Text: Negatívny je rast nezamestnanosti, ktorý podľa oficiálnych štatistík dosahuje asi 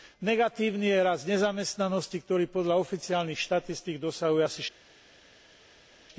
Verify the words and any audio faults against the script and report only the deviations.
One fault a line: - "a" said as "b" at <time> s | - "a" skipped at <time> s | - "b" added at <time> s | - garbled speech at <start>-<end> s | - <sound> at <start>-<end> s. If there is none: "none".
none